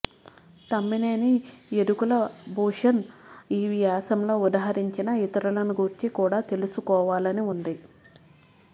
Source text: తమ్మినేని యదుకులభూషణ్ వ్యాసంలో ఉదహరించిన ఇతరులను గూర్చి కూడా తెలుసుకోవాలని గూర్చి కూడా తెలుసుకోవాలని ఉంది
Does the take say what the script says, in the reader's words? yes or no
no